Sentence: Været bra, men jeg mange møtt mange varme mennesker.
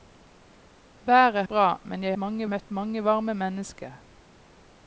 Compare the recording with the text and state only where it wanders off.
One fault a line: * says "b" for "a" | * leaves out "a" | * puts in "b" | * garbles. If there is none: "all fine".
all fine